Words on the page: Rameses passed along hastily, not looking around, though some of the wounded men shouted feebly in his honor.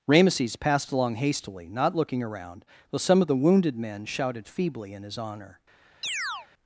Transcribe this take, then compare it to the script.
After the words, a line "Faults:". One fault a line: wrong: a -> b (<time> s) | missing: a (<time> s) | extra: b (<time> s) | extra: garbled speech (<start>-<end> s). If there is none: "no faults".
Rameses passed along hastily, not looking around, though some of the wounded men shouted feebly in his honor.
Faults:
no faults